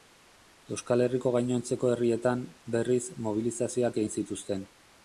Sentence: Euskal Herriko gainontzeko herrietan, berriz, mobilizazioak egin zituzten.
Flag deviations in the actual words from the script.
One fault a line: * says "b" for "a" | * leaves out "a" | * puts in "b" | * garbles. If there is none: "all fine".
all fine